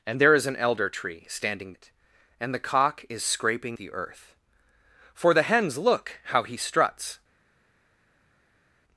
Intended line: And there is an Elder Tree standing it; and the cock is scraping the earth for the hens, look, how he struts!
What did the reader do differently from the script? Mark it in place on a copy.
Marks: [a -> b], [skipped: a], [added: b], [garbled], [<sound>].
And there is an Elder Tree standing it; and the cock is scraping the earth for the hens, look, how he struts!